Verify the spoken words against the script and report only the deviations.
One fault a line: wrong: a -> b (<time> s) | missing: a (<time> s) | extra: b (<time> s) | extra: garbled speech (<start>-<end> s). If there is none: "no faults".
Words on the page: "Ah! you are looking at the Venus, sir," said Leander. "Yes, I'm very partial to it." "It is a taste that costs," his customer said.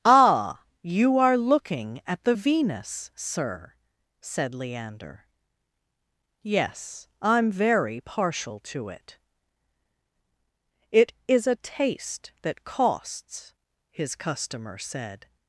no faults